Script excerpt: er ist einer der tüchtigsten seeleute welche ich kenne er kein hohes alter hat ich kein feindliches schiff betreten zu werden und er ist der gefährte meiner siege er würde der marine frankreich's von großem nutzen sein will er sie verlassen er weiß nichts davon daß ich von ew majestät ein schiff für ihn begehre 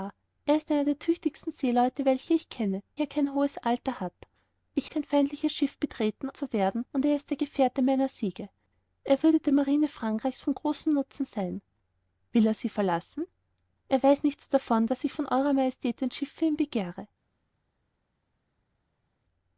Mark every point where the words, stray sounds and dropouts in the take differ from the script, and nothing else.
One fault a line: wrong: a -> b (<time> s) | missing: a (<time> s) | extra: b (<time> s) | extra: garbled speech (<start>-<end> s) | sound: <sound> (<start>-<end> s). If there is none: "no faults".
no faults